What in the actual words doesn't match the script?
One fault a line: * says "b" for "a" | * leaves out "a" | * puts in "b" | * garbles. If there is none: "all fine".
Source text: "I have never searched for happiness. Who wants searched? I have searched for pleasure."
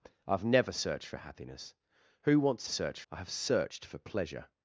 all fine